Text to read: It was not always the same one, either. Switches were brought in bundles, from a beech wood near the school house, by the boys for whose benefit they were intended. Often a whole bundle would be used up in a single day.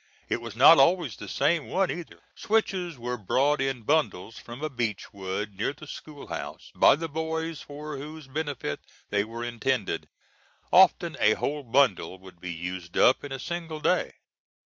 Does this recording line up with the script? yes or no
yes